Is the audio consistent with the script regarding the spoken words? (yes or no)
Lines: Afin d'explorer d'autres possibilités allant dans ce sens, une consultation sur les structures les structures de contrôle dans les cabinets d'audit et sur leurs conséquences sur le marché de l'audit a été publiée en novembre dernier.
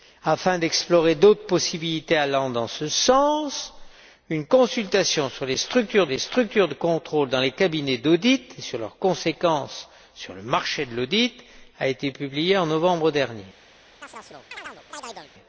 yes